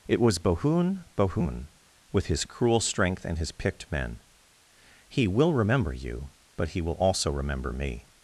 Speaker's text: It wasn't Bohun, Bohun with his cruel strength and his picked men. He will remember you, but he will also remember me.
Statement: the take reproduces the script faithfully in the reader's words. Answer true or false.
false